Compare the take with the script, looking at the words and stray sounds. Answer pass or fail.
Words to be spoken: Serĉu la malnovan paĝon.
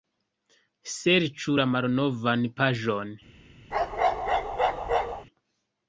fail